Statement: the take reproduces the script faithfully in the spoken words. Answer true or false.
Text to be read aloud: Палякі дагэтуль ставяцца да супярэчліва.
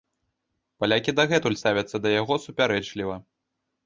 false